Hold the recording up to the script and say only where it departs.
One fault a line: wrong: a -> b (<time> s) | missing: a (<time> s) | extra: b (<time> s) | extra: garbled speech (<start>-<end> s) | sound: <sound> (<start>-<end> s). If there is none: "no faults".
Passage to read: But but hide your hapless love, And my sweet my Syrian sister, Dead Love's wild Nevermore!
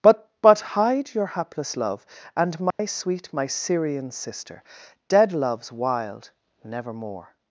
sound: dropout (2.7-2.8 s)